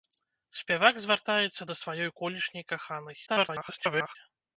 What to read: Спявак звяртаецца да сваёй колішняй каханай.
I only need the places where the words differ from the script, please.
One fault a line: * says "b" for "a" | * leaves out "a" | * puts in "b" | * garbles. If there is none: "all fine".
* garbles